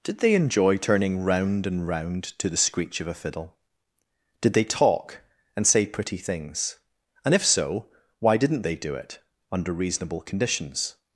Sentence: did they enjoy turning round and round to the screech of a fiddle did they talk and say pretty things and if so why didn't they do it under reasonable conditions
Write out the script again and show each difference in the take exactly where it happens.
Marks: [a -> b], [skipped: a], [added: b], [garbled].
did they enjoy turning round and round to the screech of a fiddle did they talk and say pretty things and if so why didn't they do it under reasonable conditions